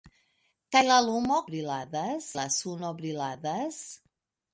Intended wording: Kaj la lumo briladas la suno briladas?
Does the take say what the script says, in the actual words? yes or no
yes